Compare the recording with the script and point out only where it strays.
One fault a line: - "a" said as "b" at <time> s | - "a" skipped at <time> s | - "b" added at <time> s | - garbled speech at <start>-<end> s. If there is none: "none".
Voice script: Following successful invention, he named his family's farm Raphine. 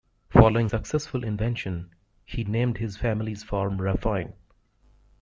none